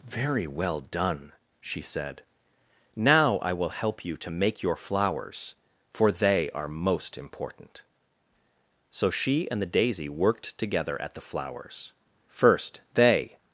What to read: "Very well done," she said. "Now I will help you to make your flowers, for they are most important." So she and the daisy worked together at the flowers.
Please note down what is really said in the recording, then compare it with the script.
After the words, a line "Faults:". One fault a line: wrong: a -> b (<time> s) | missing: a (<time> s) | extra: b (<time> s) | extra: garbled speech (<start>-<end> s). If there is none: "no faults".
"Very well done," she said. "Now I will help you to make your flowers, for they are most important." So she and the daisy worked together at the flowers. First they
Faults:
extra: First they (12.3 s)